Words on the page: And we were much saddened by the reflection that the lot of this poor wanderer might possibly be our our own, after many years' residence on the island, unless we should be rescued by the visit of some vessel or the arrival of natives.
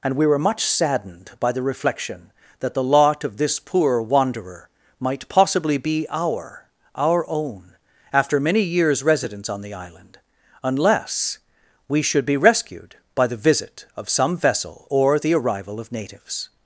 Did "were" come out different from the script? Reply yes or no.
no